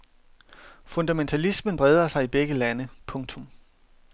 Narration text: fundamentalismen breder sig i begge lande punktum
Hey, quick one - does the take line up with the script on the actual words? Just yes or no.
yes